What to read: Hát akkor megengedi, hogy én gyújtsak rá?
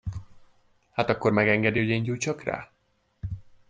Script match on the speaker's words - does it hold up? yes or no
yes